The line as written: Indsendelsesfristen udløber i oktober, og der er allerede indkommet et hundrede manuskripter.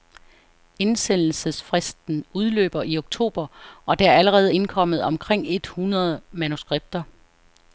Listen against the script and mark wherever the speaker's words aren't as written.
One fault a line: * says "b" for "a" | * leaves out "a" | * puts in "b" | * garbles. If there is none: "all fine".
* puts in "omkring"